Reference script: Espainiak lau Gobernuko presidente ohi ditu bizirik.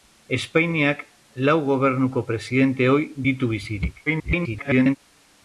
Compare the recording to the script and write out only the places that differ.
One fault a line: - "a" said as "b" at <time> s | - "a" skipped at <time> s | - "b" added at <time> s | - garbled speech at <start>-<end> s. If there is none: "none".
- garbled speech at 4.1-5.0 s